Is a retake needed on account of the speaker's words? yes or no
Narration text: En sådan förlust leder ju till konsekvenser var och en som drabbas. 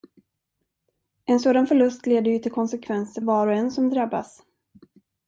no